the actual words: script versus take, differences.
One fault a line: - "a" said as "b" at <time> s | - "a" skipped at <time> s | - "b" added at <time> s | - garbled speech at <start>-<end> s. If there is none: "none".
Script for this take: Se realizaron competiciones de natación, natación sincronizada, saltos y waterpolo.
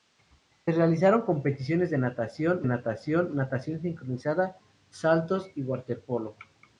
- "natación" added at 3.3 s